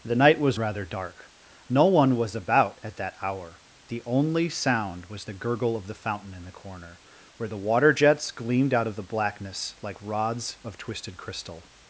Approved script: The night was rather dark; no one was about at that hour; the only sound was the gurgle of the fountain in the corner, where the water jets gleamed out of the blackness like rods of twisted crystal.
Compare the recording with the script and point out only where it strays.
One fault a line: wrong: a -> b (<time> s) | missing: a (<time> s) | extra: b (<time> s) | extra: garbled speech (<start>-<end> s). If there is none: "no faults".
no faults